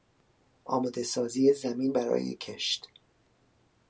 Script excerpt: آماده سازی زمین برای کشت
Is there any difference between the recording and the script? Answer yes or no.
no